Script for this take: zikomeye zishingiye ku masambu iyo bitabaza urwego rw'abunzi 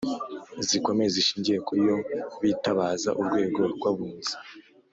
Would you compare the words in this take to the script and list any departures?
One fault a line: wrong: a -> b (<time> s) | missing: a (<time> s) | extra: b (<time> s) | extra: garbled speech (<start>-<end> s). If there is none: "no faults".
missing: masambu (1.7 s)